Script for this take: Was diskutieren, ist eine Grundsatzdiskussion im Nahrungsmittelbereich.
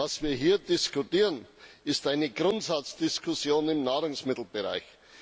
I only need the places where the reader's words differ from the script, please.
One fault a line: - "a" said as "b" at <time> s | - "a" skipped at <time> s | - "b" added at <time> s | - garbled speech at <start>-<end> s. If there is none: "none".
- "wir hier" added at 0.2 s